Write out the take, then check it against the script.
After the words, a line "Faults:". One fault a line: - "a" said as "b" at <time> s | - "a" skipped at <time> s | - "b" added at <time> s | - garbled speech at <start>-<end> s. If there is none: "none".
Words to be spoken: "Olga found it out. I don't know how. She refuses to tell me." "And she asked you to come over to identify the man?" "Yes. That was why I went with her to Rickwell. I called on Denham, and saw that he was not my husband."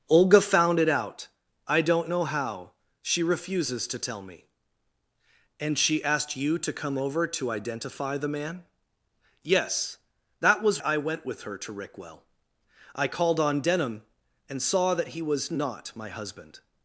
"Olga found it out. I don't know how. She refuses to tell me." "And she asked you to come over to identify the man?" "Yes. That was I went with her to Rickwell. I called on Denham, and saw that he was not my husband."
Faults:
- "why" skipped at 10.8 s